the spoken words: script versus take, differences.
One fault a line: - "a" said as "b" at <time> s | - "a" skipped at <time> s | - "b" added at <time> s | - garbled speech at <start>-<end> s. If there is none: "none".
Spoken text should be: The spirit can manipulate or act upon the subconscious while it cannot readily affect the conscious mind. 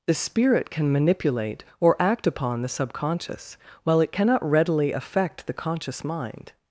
none